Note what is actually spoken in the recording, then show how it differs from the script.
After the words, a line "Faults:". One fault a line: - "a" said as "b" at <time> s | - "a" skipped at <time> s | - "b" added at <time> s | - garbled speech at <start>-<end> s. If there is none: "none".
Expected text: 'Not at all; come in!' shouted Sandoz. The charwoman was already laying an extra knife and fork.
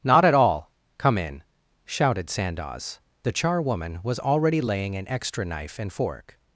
'Not at all; come in!' shouted Sandoz. The charwoman was already laying an extra knife and fork.
Faults:
none